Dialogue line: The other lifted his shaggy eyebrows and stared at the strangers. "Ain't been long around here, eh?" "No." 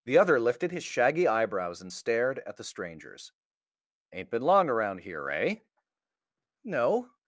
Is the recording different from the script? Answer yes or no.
no